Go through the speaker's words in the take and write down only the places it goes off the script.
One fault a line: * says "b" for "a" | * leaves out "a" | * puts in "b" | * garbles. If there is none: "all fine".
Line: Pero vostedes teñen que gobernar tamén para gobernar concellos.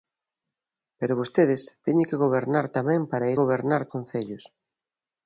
all fine